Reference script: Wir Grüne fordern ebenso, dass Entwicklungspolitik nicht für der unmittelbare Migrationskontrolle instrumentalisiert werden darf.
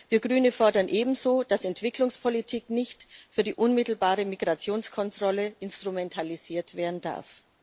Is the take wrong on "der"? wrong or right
wrong